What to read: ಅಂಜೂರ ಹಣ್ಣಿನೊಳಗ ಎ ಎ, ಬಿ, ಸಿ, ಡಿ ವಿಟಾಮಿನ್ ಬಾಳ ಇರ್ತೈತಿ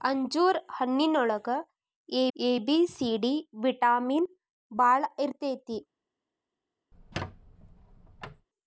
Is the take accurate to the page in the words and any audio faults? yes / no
no